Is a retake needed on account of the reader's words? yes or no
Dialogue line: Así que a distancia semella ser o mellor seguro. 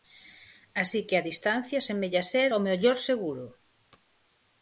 no